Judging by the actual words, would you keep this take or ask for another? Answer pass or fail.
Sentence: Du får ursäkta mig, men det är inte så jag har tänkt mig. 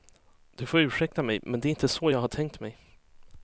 pass